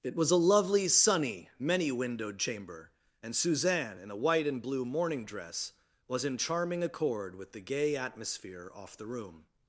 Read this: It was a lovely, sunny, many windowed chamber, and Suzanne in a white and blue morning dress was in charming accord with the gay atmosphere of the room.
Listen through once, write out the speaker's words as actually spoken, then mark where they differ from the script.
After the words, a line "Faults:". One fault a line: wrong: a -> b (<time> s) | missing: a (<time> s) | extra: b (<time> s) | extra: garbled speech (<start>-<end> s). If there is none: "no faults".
It was a lovely, sunny, many windowed chamber, and Suzanne in a white and blue morning dress was in charming accord with the gay atmosphere off the room.
Faults:
wrong: of -> off (8.7 s)